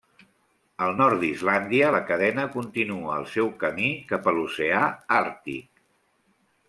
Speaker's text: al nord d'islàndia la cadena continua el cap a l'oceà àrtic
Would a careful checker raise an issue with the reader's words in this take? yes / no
yes